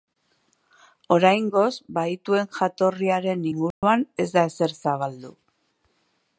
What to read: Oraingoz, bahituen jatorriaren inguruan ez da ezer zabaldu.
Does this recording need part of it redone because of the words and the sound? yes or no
yes